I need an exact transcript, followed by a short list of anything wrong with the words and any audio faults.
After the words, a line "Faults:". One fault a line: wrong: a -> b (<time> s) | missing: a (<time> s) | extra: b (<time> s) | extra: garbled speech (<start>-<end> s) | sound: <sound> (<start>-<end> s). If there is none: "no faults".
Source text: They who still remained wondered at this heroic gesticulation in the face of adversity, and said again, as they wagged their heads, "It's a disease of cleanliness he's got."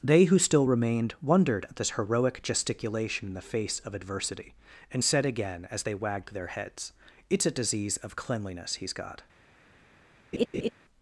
They who still remained wondered at this heroic gesticulation in the face of adversity, and said again, as they wagged their heads, "It's a disease of cleanliness he's got."
Faults:
sound: laugh (10.3-10.7 s)